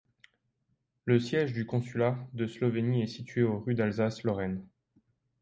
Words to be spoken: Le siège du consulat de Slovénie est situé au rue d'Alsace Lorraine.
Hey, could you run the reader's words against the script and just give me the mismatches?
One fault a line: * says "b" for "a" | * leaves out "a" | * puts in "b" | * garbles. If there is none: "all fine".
all fine